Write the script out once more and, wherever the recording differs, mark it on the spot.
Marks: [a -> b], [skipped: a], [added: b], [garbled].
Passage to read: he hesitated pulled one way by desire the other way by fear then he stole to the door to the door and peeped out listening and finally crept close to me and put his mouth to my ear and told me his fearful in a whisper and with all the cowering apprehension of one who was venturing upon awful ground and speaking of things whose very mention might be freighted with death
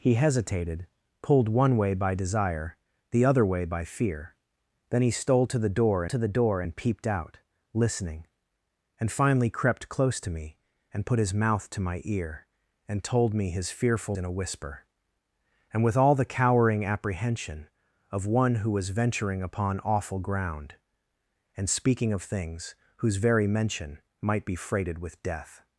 he hesitated pulled one way by desire the other way by fear then he stole to the door to the door and peeped out listening and finally crept close to me and put his mouth to my ear and told me his fearful in a whisper and with all the cowering apprehension of one who was venturing upon awful ground and speaking of things whose very mention might be freighted with death